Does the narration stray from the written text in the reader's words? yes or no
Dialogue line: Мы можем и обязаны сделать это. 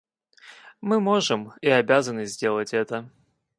no